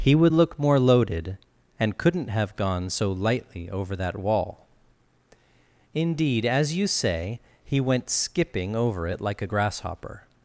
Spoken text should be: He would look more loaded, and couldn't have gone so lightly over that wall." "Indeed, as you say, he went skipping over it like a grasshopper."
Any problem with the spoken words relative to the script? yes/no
no